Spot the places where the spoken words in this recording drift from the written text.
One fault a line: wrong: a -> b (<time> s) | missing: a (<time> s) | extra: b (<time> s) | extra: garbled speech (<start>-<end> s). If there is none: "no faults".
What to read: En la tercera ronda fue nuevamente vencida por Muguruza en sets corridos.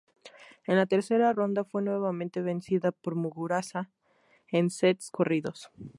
no faults